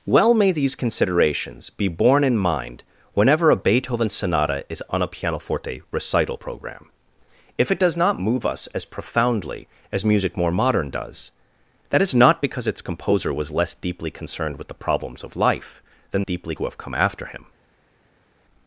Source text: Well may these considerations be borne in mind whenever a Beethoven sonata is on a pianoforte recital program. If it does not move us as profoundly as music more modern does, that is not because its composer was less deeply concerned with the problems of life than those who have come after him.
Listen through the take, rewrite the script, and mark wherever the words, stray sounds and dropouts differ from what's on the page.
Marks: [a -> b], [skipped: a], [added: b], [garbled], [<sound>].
Well may these considerations be borne in mind whenever a Beethoven sonata is on a pianoforte recital program. If it does not move us as profoundly as music more modern does, that is not because its composer was less deeply concerned with the problems of life than [those -> deeply] who have come after him.